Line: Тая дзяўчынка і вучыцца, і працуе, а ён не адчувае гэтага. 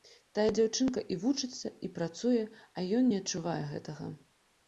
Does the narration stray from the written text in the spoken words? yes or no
no